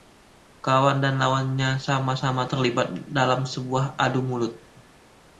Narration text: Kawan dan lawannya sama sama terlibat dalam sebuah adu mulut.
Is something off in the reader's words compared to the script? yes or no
no